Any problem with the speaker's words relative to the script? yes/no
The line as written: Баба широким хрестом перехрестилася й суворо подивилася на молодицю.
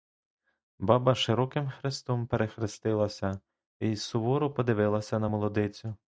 no